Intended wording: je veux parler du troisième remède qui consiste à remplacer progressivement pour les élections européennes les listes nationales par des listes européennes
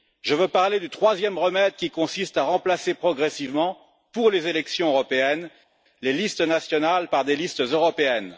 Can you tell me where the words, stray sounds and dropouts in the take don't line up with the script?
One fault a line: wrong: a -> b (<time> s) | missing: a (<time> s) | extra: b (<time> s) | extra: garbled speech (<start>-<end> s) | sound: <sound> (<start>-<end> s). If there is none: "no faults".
no faults